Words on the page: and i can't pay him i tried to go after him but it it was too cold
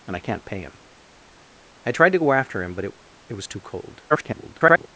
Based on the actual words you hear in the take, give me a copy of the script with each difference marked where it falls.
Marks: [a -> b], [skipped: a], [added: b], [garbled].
and i can't pay him i tried to go after him but it it was too cold [garbled]